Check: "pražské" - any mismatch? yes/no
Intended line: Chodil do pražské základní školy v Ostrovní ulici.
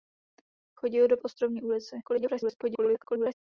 yes